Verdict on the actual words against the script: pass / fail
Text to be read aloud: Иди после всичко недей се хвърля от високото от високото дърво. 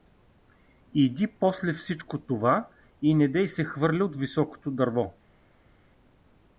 fail